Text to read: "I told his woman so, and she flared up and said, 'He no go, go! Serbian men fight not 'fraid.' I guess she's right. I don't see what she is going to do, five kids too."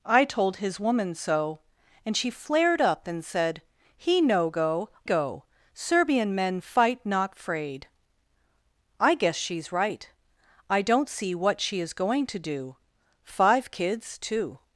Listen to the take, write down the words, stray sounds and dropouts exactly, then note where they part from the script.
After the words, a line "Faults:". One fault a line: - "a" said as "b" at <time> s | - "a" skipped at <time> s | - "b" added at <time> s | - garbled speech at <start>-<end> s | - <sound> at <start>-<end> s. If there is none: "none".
"I told his woman so, and she flared up and said, 'He no go, go! Serbian men fight not 'fraid.' I guess she's right. I don't see what she is going to do, five kids too."
Faults:
none